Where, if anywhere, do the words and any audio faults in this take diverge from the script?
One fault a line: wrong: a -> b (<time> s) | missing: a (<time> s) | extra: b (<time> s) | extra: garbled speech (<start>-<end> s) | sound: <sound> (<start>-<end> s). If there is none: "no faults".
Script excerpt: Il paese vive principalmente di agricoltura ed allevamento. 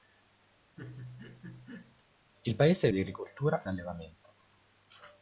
sound: laugh (0.8-2.0 s)
missing: vive principalmente (2.9 s)
missing: ed (3.6 s)